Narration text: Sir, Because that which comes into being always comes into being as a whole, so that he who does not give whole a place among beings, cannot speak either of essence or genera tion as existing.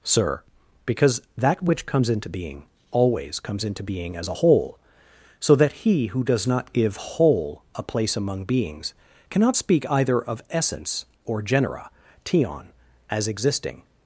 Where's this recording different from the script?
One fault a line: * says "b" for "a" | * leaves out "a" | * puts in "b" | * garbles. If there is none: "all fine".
all fine